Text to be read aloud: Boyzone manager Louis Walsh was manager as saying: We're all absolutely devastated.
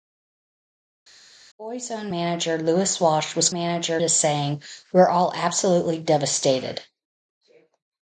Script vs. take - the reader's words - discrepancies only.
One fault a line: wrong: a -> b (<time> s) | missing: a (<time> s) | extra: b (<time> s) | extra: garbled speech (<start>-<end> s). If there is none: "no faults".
no faults